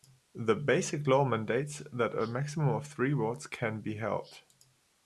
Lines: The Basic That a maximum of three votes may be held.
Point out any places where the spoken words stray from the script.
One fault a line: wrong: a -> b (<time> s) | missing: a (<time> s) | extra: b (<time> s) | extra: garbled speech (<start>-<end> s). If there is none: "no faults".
extra: Law mandates (1.1 s)
wrong: may -> can (3.5 s)